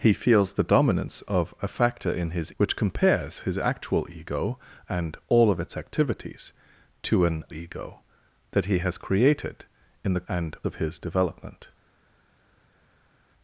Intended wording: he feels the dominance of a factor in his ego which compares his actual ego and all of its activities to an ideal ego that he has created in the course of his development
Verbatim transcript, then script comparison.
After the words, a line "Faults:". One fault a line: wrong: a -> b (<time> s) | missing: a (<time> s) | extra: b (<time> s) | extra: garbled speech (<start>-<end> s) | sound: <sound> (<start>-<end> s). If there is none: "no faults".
he feels the dominance of a factor in his which compares his actual ego and all of its activities to an ego that he has created in the and of his development
Faults:
missing: ego (2.5 s)
missing: ideal (7.5 s)
wrong: course -> and (10.3 s)